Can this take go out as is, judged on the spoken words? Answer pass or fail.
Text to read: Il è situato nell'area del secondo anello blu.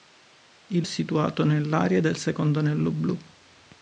pass